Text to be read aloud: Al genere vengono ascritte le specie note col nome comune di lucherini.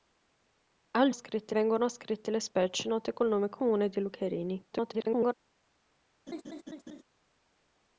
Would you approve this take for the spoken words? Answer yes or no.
no